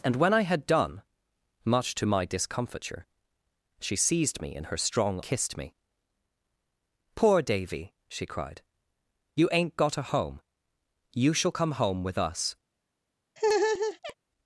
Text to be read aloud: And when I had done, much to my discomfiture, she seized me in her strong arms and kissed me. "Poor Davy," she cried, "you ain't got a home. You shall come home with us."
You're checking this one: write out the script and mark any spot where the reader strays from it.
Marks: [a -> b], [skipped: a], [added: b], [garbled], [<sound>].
And when I had done, much to my discomfiture, she seized me in her strong [skipped: arms and] kissed me. "Poor Davy," she cried, "you ain't got a home. You shall come home with us." [laugh]